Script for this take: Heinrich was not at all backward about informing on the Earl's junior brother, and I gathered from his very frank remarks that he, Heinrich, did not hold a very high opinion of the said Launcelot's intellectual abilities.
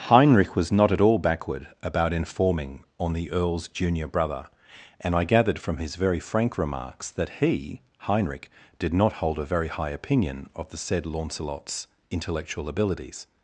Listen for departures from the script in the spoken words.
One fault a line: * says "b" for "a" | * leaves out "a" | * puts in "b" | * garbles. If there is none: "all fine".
all fine